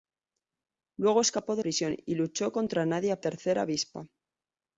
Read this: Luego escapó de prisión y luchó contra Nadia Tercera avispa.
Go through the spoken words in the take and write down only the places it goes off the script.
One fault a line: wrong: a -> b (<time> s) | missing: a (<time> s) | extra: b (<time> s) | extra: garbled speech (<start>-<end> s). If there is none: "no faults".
no faults